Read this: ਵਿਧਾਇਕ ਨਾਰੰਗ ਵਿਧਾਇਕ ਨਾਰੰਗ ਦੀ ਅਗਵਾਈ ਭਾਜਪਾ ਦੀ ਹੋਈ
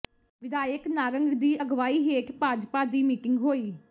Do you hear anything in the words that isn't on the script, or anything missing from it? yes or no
yes